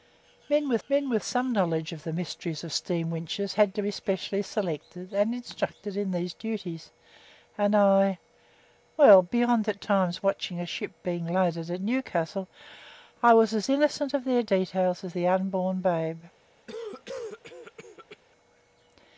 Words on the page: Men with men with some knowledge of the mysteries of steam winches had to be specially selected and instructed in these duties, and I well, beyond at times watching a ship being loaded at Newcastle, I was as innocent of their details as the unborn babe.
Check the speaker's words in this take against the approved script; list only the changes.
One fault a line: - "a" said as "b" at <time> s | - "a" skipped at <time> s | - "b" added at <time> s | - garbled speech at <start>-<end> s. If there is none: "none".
none